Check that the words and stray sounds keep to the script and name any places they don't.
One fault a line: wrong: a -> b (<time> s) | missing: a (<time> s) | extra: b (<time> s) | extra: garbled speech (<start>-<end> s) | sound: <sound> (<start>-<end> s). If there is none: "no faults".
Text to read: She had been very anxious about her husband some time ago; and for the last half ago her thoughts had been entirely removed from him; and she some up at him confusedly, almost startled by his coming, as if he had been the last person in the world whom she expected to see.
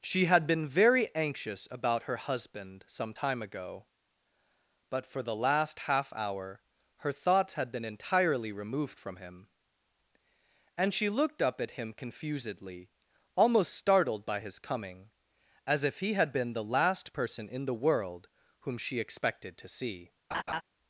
wrong: and -> but (4.9 s)
wrong: ago -> hour (6.1 s)
wrong: some -> looked (11.1 s)
sound: laugh (20.3-20.6 s)